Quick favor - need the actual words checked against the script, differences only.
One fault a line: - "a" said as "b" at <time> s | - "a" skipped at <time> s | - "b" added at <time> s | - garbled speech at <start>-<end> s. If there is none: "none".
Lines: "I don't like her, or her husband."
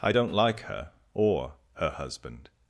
none